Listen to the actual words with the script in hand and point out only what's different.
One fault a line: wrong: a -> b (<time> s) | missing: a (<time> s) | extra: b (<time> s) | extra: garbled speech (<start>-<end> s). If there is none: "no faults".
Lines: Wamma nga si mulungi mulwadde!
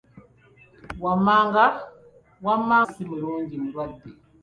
missing: nga (2.8 s)